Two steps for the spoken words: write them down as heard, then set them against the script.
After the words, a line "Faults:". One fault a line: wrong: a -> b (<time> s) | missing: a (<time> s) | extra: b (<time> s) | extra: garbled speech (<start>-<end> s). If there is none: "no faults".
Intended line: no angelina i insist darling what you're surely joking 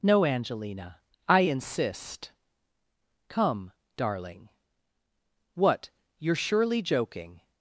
no angelina i insist come darling what you're surely joking
Faults:
extra: come (3.3 s)